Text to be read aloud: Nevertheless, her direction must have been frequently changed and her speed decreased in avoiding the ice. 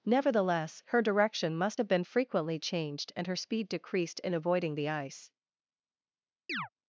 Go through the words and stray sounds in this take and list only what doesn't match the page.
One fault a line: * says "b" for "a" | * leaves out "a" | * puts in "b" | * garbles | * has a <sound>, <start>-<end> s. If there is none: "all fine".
* has a chirp, 6.5-6.7 s